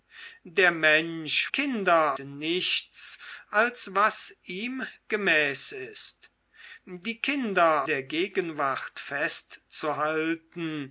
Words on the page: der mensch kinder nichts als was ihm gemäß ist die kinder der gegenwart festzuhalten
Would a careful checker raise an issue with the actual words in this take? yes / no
no